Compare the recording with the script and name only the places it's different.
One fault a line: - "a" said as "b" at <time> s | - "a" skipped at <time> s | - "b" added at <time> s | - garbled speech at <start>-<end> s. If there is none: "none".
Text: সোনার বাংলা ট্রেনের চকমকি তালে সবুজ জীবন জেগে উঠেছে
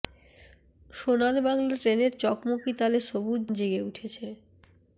- "জীবন" skipped at 3.4 s